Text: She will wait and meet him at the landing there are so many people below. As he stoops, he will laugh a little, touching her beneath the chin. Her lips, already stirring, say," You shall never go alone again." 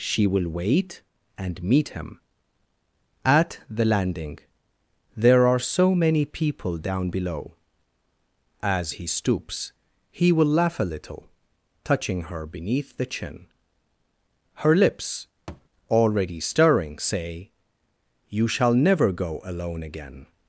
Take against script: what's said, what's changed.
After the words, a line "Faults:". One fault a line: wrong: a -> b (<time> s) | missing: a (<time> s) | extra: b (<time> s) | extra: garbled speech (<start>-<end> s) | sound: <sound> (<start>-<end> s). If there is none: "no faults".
She will wait and meet him at the landing there are so many people down below. As he stoops, he will laugh a little, touching her beneath the chin. Her lips, already stirring, say," You shall never go alone again."
Faults:
extra: down (6.8 s)
sound: thud (15.5-15.7 s)